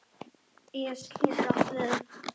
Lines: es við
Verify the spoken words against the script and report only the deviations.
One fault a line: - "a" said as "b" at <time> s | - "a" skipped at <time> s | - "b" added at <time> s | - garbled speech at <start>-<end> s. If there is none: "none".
- "getur átt" added at 1.2 s